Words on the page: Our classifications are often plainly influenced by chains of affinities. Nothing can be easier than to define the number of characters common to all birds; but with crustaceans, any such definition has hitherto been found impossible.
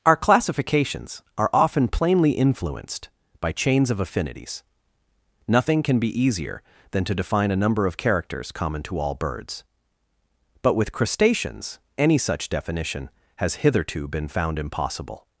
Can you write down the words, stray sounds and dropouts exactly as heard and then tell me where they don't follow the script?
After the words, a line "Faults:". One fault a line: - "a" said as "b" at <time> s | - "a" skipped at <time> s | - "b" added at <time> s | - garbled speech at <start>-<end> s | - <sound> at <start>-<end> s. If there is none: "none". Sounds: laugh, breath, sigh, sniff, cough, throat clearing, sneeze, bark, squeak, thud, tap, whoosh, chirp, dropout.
Our classifications are often plainly influenced by chains of affinities. Nothing can be easier than to define a number of characters common to all birds; but with crustaceans, any such definition has hitherto been found impossible.
Faults:
- "the" said as "a" at 7.5 s